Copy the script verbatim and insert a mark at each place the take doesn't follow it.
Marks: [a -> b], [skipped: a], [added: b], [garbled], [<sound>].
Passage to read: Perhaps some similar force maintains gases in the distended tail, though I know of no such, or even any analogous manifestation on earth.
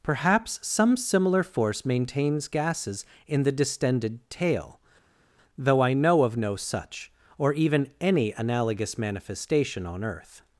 Perhaps some similar force maintains gases in the distended tail, though I know of no such, or even any analogous manifestation on earth.